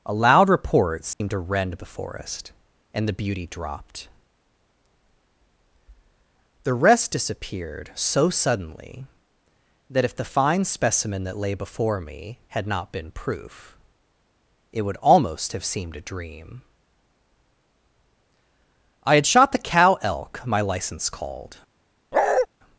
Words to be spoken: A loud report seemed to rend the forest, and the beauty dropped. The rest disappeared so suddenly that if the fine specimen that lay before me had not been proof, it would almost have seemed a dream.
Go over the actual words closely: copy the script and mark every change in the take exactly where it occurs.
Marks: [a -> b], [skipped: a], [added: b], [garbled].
A loud report seemed to rend the forest, and the beauty dropped. The rest disappeared so suddenly that if the fine specimen that lay before me had not been proof, it would almost have seemed a dream. [added: I had shot the cow elk my license called]